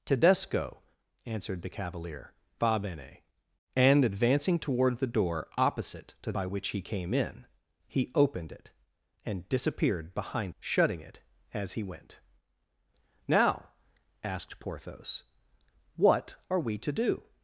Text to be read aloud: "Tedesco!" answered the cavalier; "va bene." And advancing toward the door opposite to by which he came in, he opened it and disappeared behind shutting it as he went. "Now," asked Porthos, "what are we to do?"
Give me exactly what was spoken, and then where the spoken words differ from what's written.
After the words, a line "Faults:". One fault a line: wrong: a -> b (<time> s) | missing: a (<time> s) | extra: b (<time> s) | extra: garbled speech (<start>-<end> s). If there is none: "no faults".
"Tedesco!" answered the cavalier; "va bene." And advancing toward the door opposite to by which he came in, he opened it and disappeared behind shutting it as he went. "Now," asked Porthos, "what are we to do?"
Faults:
no faults